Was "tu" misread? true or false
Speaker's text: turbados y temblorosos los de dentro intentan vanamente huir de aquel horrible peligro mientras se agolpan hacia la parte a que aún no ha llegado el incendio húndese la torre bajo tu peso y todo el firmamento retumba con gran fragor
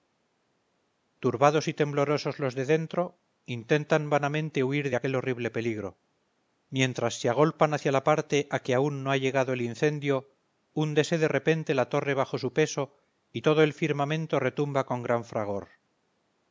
true